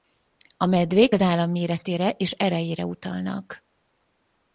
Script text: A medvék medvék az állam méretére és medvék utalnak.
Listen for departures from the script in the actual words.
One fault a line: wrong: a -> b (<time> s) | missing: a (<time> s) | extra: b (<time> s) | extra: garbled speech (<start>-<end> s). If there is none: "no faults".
missing: medvék (1.1 s)
wrong: medvék -> erejére (2.3 s)